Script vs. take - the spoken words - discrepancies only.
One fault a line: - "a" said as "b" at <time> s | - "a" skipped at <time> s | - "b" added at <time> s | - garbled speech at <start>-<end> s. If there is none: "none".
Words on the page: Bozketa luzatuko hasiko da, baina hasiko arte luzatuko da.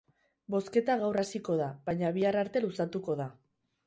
- "luzatuko" said as "gaur" at 1.0 s
- "hasiko" said as "bihar" at 2.2 s